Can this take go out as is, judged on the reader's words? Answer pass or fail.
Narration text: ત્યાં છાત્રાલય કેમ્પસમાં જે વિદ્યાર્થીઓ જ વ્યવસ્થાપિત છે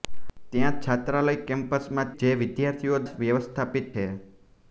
pass